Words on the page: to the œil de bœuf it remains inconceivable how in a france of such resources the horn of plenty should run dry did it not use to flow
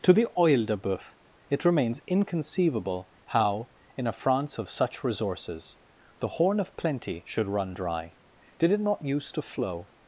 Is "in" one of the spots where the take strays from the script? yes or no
no